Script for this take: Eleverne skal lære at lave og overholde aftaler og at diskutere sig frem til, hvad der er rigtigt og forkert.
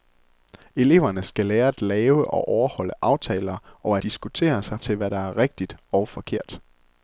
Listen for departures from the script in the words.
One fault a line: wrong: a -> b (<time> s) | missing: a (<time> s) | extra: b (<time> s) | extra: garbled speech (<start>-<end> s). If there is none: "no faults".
missing: at (4.0 s)
missing: frem (4.8 s)